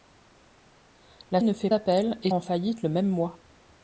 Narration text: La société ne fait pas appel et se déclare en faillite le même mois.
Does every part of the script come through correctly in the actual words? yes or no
no